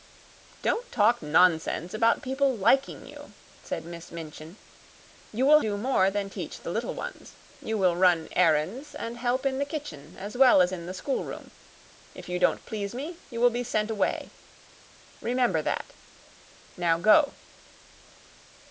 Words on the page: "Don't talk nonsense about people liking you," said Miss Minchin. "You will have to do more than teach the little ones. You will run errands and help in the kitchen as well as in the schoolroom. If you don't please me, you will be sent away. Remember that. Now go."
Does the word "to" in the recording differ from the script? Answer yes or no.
yes